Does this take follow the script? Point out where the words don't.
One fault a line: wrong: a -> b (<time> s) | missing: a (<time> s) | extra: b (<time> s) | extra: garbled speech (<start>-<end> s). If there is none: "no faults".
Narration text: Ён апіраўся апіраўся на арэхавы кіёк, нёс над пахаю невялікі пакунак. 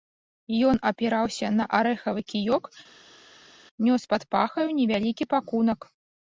missing: апіраўся (1.5 s)
wrong: над -> пад (4.1 s)